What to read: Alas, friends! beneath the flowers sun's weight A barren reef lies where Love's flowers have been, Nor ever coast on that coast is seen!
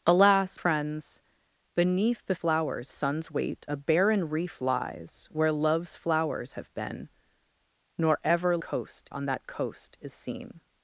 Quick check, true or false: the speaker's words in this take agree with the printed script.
true